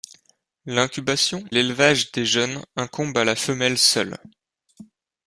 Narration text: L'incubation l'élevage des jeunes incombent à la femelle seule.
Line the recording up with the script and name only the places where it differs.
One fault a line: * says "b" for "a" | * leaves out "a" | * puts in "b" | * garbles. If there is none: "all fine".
all fine